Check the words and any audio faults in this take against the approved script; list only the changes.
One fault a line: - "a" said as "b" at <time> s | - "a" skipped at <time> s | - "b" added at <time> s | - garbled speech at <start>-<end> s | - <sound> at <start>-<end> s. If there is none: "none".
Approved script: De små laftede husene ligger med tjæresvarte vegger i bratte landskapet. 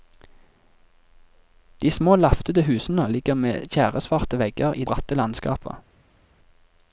none